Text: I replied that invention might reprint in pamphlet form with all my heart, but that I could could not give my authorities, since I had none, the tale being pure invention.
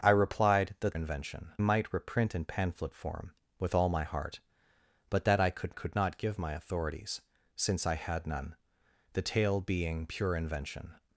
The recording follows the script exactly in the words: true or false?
true